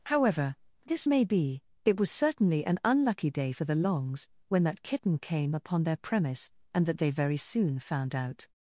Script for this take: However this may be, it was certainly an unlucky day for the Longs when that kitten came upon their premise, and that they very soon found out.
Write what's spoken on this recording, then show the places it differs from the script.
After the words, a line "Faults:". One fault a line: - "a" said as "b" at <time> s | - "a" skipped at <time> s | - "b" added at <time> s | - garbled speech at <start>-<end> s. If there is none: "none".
However this may be, it was certainly an unlucky day for the Longs when that kitten came upon their premise, and that they very soon found out.
Faults:
none